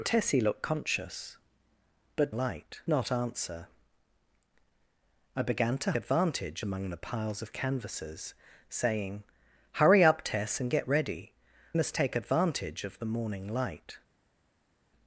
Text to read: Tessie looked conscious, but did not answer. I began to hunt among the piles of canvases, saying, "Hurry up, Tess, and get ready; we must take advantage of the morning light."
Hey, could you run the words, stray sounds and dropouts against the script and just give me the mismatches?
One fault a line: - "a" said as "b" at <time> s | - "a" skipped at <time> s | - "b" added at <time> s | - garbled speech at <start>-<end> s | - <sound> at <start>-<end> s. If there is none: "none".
- "did" said as "light" at 2.3 s
- "hunt" said as "advantage" at 6.0 s
- "we" skipped at 11.3 s